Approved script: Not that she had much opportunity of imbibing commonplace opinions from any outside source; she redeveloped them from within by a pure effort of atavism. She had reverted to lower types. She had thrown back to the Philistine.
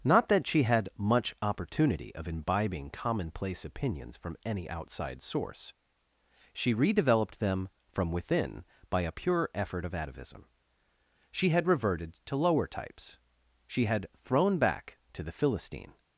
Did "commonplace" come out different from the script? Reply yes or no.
no